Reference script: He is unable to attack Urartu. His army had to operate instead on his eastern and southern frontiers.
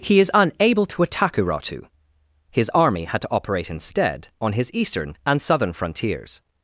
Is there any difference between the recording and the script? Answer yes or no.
no